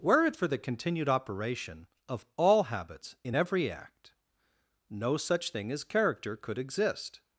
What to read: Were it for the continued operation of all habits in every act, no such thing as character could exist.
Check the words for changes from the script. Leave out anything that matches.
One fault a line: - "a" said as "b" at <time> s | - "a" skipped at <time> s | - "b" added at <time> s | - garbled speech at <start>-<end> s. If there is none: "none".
none